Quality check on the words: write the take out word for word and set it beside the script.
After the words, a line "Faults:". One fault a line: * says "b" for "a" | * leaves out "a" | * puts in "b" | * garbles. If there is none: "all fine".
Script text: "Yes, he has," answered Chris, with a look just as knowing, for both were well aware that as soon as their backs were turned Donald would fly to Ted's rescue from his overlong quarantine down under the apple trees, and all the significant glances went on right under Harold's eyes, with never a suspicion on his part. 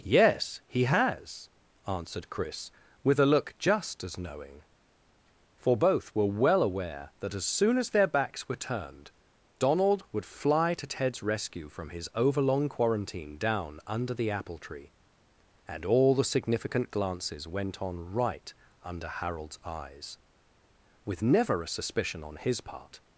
"Yes, he has," answered Chris, with a look just as knowing, for both were well aware that as soon as their backs were turned Donald would fly to Ted's rescue from his overlong quarantine down under the apple tree, and all the significant glances went on right under Harold's eyes, with never a suspicion on his part.
Faults:
* says "tree" for "trees"